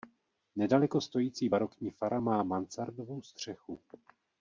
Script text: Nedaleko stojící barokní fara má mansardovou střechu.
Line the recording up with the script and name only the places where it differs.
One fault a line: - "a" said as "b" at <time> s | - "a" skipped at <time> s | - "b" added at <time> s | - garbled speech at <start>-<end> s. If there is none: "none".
none